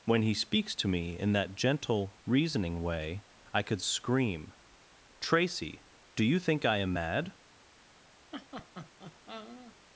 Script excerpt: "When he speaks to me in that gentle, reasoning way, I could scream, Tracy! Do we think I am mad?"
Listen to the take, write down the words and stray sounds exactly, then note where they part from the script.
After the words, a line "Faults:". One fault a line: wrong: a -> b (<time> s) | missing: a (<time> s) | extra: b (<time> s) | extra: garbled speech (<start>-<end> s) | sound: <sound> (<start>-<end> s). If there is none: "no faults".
"When he speaks to me in that gentle, reasoning way, I could scream, Tracy! Do you think I am mad?"
Faults:
wrong: we -> you (6.2 s)
sound: laugh (8.3-9.7 s)